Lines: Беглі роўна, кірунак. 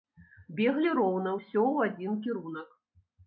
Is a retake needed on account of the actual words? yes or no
yes